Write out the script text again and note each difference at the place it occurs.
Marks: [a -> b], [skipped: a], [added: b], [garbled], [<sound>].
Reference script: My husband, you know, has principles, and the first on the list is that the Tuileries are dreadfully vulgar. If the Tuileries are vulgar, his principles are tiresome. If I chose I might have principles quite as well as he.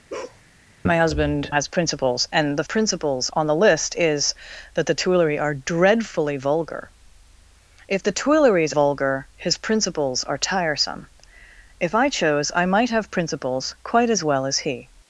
[bark] My husband, [skipped: you know,] has principles, and the [first -> principles] on the list is that the Tuileries are dreadfully vulgar. If the Tuileries [skipped: are] vulgar, his principles are tiresome. If I chose I might have principles quite as well as he.